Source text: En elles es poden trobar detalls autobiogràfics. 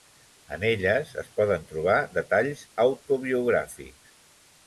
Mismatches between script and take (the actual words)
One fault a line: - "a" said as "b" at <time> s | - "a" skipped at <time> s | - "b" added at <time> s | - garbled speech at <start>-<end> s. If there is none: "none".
none